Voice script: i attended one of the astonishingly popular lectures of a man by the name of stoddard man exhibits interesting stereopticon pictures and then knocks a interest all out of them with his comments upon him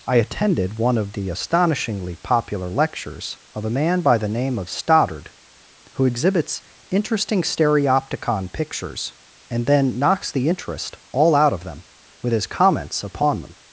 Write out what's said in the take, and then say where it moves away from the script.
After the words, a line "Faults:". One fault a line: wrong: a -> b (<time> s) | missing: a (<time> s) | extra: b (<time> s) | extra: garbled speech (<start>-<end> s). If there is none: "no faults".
i attended one of the astonishingly popular lectures of a man by the name of stoddard who exhibits interesting stereopticon pictures and then knocks the interest all out of them with his comments upon them
Faults:
wrong: man -> who (5.9 s)
wrong: a -> the (10.3 s)
wrong: him -> them (13.4 s)